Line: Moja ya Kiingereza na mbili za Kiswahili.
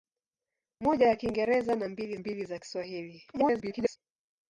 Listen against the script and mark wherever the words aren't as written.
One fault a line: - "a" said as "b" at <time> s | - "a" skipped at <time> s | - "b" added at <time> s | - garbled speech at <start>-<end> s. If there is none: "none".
- "mbili" added at 2.2 s
- garbled speech at 3.3-4.0 s